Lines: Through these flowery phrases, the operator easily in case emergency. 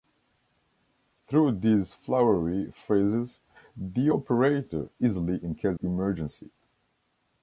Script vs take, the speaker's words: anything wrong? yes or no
no